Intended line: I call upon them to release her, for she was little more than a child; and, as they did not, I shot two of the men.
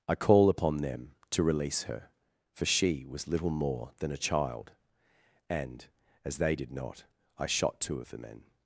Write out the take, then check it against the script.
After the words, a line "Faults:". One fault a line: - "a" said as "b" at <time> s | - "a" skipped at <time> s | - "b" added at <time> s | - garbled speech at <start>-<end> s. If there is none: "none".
I call upon them to release her, for she was little more than a child; and, as they did not, I shot two of the men.
Faults:
none